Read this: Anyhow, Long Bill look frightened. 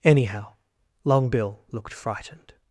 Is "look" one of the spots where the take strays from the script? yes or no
yes